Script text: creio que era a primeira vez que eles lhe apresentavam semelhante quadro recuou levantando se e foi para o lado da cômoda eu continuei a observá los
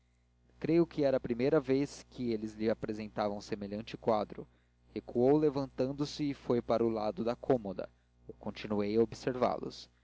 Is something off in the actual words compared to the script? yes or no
no